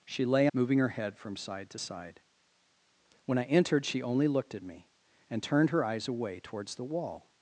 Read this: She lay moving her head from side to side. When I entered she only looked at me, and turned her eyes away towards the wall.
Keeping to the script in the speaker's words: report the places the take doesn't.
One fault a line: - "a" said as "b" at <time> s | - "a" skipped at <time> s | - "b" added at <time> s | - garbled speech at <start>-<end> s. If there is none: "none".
none